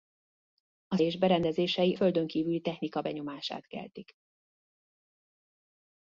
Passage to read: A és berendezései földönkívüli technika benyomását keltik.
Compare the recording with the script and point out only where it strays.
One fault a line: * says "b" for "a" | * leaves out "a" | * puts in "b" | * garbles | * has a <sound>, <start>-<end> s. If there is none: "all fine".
all fine